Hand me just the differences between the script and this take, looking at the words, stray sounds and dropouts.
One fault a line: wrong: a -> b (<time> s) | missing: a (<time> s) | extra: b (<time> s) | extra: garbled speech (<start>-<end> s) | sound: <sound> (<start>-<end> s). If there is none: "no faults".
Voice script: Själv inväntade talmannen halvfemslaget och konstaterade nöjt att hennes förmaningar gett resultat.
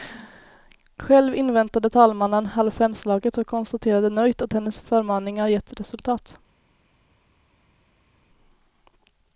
no faults